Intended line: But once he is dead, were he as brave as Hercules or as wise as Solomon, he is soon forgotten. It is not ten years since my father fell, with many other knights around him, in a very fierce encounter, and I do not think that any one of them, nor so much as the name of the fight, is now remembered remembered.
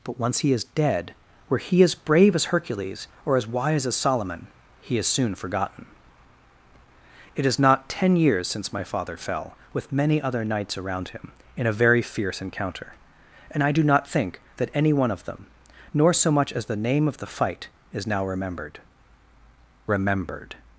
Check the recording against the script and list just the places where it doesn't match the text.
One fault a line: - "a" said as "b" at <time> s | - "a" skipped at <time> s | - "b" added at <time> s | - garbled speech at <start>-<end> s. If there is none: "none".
none